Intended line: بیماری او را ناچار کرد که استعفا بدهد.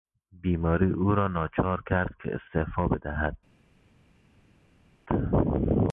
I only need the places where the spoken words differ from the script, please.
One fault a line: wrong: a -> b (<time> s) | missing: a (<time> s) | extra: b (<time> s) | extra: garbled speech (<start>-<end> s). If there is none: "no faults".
no faults